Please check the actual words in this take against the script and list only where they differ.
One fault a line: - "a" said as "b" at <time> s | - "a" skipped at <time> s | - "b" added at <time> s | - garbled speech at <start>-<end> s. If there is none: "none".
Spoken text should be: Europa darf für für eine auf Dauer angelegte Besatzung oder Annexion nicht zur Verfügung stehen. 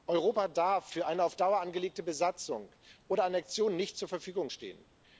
- "für" skipped at 1.1 s